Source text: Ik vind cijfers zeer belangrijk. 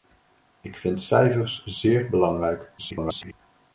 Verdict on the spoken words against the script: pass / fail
fail